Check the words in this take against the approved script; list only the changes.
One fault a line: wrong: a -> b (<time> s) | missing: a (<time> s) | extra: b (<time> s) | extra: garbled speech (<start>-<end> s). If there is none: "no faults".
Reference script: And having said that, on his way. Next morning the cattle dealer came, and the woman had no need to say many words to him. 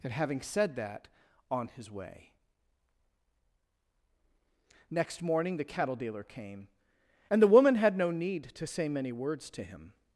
no faults